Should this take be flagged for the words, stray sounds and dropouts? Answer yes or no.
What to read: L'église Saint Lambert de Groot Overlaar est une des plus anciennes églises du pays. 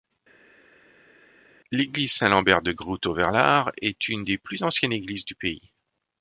no